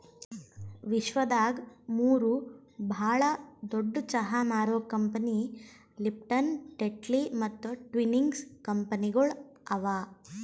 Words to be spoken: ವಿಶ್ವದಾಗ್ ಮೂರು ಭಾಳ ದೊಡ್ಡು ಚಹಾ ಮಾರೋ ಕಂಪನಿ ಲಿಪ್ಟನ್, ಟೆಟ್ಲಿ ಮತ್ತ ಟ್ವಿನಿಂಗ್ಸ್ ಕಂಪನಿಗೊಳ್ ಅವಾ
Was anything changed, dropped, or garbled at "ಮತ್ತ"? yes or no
no